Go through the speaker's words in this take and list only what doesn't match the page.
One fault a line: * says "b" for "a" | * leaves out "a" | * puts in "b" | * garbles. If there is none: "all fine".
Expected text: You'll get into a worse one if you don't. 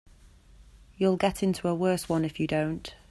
all fine